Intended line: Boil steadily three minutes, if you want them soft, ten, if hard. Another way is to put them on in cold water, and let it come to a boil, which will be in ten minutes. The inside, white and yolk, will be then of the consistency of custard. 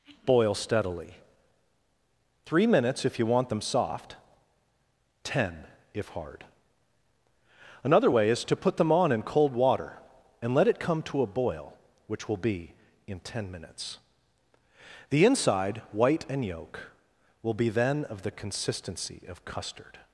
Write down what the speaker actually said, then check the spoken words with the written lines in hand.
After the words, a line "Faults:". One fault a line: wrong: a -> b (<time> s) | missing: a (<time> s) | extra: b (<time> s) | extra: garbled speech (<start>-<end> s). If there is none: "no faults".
Boil steadily three minutes, if you want them soft, ten, if hard. Another way is to put them on in cold water, and let it come to a boil, which will be in ten minutes. The inside, white and yolk, will be then of the consistency of custard.
Faults:
no faults